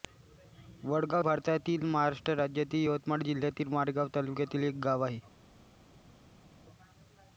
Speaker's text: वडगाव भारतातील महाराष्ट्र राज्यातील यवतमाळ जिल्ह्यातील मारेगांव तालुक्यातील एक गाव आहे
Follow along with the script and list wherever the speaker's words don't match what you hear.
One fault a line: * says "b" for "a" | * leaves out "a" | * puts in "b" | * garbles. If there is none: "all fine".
all fine